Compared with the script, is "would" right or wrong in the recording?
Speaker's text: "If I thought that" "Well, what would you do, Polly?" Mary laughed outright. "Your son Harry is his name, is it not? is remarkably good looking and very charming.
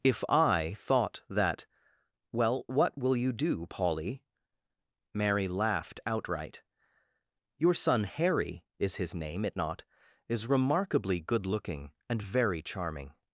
wrong